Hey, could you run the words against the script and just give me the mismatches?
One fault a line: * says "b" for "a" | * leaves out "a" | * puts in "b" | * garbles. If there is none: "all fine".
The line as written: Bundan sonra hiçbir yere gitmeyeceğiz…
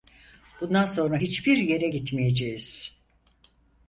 all fine